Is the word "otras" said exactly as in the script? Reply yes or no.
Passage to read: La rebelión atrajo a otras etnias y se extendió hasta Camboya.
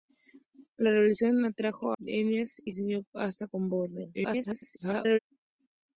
no